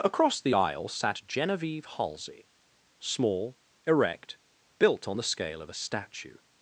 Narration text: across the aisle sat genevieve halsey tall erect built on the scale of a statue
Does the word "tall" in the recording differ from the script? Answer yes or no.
yes